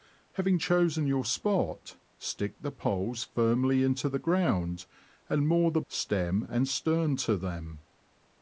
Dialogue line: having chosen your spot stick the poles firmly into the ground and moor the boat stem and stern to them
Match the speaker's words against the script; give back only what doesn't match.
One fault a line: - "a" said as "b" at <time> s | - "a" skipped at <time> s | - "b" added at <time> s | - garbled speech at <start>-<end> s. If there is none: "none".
- "boat" skipped at 5.8 s